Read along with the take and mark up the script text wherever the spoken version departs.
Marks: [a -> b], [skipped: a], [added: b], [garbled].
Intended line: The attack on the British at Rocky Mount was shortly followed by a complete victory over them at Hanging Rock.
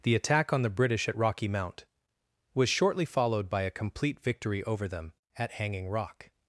The attack on the British at Rocky Mount was shortly followed by a complete victory over them at Hanging Rock.